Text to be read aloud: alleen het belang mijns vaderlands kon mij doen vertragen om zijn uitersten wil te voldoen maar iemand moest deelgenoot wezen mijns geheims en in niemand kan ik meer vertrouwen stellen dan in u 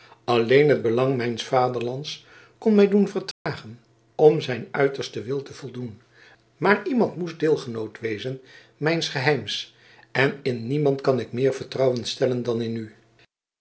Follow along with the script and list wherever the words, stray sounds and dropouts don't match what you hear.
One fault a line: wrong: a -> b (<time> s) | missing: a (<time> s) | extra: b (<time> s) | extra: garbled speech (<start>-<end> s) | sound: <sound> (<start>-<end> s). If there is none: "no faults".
sound: dropout (3.3-3.5 s)